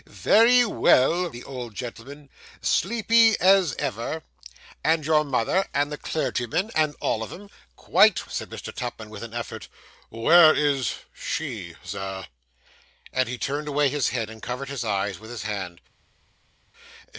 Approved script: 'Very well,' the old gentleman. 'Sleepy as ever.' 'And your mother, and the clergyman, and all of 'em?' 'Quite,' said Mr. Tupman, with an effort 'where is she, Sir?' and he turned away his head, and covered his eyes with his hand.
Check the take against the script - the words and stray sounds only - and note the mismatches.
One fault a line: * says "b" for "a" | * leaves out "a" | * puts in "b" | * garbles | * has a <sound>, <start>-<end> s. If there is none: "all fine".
all fine